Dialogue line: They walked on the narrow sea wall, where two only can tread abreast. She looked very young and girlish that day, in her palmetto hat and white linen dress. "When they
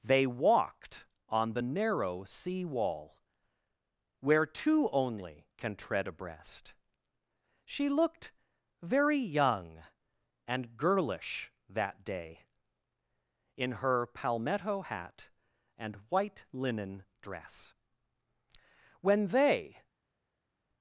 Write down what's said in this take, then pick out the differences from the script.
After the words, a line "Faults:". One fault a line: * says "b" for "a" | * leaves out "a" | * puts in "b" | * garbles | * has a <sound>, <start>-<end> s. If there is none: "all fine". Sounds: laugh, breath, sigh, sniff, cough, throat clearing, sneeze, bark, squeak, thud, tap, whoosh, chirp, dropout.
They walked on the narrow sea wall, where two only can tread abreast. She looked very young and girlish that day, in her palmetto hat and white linen dress. "When they
Faults:
all fine